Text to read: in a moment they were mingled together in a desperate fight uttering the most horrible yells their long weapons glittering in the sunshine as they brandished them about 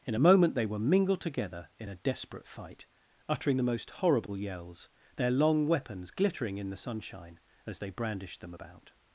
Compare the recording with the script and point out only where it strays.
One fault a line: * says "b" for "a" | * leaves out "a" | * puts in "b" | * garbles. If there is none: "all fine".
all fine